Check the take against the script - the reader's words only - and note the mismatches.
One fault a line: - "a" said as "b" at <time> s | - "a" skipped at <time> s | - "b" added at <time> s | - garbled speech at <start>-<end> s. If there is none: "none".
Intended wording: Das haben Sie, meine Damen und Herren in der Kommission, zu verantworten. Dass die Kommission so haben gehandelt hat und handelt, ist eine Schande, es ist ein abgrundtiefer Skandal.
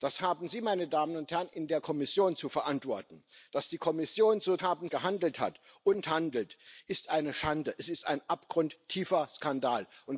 none